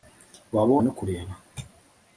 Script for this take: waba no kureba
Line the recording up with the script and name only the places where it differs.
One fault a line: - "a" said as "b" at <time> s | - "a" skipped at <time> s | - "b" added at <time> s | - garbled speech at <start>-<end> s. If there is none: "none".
none